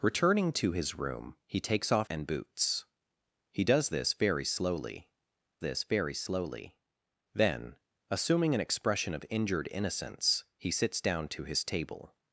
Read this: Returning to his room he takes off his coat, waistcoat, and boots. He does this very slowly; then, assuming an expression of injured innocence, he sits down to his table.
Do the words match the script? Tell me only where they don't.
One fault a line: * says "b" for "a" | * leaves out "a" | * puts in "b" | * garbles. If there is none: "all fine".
* leaves out "his coat waistcoat"
* puts in "this very slowly"